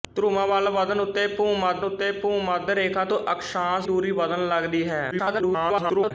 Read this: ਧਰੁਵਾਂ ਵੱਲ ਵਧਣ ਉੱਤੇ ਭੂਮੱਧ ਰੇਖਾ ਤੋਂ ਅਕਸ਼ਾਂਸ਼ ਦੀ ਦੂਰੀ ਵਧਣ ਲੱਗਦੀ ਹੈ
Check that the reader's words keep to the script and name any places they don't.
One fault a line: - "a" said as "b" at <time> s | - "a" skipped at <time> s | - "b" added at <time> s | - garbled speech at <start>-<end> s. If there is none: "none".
- "ਉੱਤੇ ਭੂਮੱਧ" added at 1.8 s
- "ਦੀ" skipped at 3.9 s
- garbled speech at 5.1-6.1 s